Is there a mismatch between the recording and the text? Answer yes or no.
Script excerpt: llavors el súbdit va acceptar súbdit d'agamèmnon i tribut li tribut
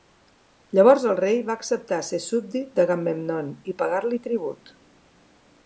yes